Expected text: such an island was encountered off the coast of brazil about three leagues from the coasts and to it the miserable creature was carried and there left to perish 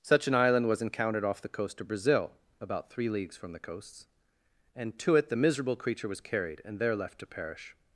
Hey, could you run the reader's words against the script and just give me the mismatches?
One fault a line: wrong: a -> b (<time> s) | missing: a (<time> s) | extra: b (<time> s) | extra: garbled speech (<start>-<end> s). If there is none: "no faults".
no faults